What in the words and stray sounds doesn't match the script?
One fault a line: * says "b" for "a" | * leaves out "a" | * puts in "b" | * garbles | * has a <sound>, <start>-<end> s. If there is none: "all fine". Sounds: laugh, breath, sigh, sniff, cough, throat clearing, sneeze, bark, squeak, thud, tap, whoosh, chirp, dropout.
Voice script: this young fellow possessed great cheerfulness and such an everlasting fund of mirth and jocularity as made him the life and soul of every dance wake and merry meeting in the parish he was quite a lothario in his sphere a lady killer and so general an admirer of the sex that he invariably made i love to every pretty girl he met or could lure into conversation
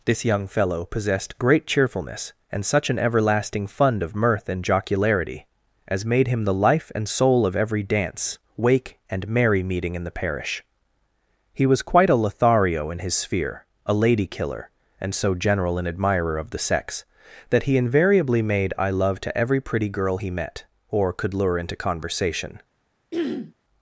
* has a throat clearing, 23.1-23.5 s